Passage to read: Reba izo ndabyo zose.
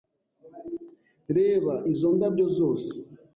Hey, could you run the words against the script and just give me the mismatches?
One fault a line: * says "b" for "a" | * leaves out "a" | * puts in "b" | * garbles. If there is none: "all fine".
all fine